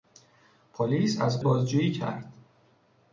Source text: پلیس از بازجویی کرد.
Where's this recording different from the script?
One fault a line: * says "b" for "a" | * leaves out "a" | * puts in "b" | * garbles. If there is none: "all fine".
all fine